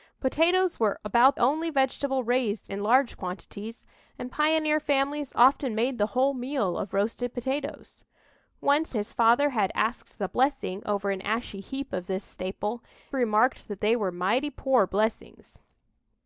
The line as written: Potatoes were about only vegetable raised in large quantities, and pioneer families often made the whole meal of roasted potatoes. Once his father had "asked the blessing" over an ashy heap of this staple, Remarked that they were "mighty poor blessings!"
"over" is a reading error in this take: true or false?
false